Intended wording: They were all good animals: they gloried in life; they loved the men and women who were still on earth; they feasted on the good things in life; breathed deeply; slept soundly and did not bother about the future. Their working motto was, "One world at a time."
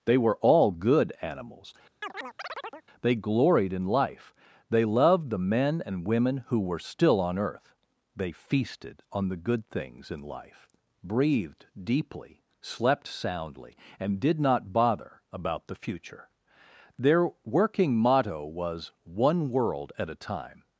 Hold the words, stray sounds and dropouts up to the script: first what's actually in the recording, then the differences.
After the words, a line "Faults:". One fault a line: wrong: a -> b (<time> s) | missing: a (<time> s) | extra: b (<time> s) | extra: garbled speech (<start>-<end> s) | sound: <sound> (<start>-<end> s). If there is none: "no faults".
They were all good animals: they gloried in life; they loved the men and women who were still on earth; they feasted on the good things in life; breathed deeply; slept soundly and did not bother about the future. Their working motto was, "One world at a time."
Faults:
sound: chirp (2.0-2.9 s)